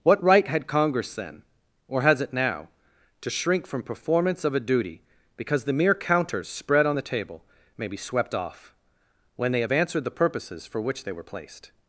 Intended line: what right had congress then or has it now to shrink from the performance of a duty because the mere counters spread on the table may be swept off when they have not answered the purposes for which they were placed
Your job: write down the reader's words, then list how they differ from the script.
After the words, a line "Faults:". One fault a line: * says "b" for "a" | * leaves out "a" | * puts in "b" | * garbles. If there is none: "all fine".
what right had congress then or has it now to shrink from performance of a duty because the mere counters spread on the table may be swept off when they have answered the purposes for which they were placed
Faults:
* leaves out "the"
* leaves out "not"